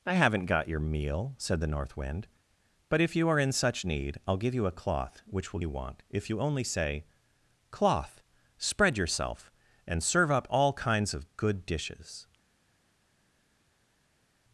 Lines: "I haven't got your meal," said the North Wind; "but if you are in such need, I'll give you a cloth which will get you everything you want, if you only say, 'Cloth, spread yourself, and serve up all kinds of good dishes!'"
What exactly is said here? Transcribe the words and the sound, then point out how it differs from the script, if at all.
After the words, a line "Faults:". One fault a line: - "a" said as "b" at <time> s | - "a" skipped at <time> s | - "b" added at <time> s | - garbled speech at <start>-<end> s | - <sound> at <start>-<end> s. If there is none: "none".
"I haven't got your meal," said the North Wind; "but if you are in such need, I'll give you a cloth which will you want, if you only say, 'Cloth, spread yourself, and serve up all kinds of good dishes!'"
Faults:
- "get you everything" skipped at 5.6 s